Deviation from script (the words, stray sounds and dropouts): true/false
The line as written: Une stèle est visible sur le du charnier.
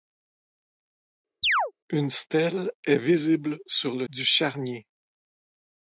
true